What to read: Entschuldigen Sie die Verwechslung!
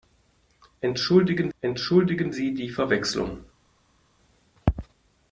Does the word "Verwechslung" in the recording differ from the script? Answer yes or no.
no